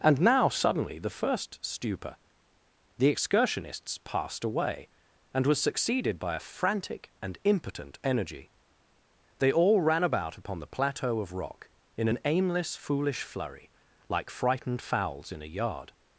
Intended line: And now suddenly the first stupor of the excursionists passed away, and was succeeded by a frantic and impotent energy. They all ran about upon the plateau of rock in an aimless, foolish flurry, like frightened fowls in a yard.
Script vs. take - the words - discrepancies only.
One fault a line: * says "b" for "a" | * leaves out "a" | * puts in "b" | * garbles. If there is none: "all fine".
* leaves out "of"